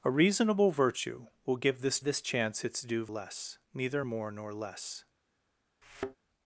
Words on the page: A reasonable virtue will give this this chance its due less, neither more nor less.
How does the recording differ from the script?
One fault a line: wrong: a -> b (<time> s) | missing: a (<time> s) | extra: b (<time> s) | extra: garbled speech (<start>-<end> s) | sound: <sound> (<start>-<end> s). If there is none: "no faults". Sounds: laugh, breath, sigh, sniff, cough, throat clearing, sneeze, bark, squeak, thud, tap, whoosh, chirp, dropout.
sound: thud (5.8-6.2 s)